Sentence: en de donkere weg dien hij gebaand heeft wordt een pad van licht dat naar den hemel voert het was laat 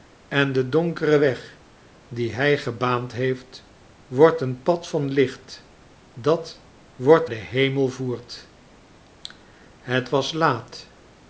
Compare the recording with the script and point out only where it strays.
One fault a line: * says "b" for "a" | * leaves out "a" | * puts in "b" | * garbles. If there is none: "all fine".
* says "wordt" for "naar"